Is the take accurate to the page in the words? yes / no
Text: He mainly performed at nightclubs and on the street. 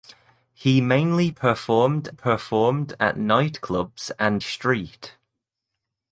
no